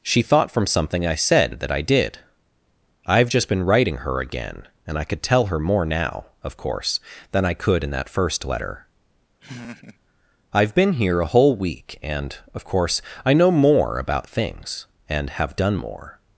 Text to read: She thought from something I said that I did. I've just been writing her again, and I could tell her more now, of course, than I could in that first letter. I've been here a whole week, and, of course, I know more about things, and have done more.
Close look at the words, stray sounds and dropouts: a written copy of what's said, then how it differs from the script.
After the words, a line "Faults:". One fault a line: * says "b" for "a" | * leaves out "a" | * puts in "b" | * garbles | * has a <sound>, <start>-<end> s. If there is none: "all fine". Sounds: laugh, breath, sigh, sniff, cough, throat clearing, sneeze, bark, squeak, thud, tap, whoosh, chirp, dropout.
She thought from something I said that I did. I've just been writing her again, and I could tell her more now, of course, than I could in that first letter. I've been here a whole week, and, of course, I know more about things, and have done more.
Faults:
* has a laugh, 9.4-10.0 s